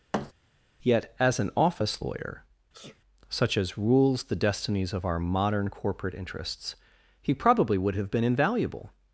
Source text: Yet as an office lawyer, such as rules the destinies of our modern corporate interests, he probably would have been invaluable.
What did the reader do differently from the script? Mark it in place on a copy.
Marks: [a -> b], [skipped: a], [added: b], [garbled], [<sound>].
[thud] Yet as an office lawyer, [sneeze] such as rules the destinies of our modern corporate interests, he probably would have been invaluable.